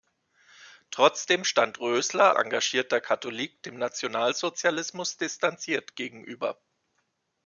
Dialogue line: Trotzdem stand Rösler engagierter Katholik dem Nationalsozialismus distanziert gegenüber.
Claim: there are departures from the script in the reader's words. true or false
false